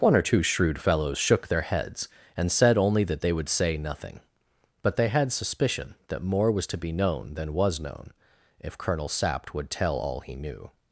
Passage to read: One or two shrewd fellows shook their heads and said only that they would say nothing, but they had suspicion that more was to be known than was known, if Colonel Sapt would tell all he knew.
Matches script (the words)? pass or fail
pass